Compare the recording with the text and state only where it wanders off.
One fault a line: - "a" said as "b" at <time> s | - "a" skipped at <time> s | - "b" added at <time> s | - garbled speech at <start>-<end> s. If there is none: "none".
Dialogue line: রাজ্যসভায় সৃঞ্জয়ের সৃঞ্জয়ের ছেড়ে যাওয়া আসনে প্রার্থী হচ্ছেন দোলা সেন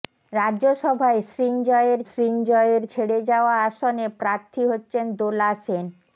none